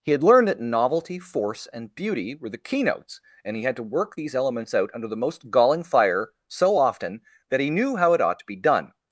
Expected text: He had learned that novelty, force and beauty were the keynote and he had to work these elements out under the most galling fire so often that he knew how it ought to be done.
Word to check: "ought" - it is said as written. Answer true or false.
true